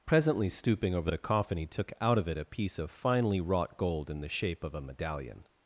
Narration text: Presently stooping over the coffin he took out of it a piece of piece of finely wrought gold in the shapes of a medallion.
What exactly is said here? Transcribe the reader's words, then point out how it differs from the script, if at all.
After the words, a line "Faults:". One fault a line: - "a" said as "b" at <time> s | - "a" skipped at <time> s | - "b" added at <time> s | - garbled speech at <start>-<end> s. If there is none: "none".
Presently stooping over the coffin he took out of it a piece of finely wrought gold in the shape of a medallion.
Faults:
- "piece of" skipped at 2.9 s
- "shapes" said as "shape" at 4.3 s